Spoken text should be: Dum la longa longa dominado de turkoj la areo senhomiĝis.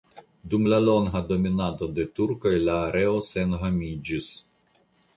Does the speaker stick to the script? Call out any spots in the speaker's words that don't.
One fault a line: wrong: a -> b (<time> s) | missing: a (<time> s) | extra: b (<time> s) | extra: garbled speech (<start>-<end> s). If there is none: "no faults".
missing: longa (1.2 s)